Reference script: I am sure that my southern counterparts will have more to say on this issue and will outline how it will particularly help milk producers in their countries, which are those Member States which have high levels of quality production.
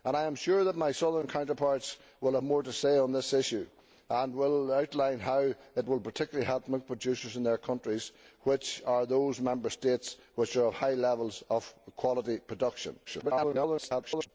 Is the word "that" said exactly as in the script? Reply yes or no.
yes